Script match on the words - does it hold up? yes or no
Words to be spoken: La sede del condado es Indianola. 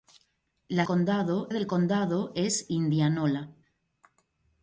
no